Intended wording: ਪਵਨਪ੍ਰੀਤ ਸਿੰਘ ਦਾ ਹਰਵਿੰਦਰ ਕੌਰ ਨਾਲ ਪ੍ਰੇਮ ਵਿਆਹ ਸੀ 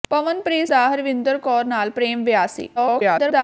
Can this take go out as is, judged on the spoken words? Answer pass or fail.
fail